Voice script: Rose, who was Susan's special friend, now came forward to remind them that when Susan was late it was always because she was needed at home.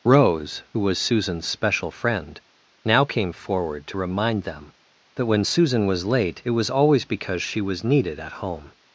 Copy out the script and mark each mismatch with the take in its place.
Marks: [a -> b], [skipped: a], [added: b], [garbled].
Rose, who was Susan's special friend, now came forward to remind them that when Susan was late it was always because she was needed at home.